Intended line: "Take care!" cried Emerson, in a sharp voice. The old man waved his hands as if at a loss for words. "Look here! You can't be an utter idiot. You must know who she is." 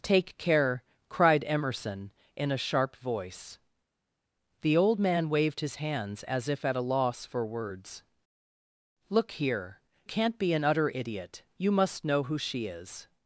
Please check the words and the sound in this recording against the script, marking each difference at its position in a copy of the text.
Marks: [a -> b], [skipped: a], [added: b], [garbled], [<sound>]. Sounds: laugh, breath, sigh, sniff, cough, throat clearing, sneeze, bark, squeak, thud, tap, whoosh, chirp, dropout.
"Take care!" cried Emerson, in a sharp voice. The old man waved his hands as if at a loss for words. "Look here! [skipped: You] can't be an utter idiot. You must know who she is."